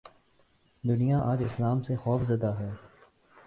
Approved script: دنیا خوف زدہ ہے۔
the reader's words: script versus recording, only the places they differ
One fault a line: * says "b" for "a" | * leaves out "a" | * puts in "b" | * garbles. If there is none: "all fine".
* puts in "آج اسلام سے"